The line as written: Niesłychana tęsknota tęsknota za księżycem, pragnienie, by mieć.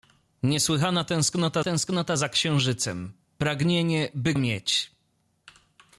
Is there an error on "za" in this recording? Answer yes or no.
no